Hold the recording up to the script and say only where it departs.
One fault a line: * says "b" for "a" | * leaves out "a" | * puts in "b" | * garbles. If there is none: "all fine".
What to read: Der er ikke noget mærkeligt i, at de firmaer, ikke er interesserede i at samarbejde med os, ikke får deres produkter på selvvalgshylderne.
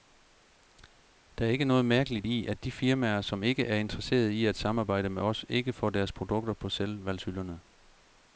* puts in "som"